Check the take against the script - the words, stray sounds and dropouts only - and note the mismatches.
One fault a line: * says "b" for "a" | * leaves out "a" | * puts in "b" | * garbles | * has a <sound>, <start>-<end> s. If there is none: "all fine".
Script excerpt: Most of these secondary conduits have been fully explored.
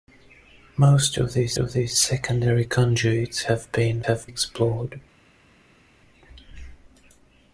* puts in "of these"
* says "have" for "fully"